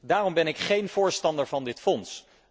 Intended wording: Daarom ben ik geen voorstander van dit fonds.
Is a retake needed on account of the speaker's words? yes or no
no